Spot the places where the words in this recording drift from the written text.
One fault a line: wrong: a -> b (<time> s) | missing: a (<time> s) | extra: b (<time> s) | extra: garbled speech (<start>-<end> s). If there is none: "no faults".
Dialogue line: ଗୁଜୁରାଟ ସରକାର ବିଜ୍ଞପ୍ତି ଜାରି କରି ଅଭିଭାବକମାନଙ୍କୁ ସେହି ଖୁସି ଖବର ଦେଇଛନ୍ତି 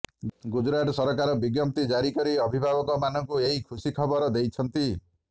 wrong: ସେହି -> ଏହି (3.5 s)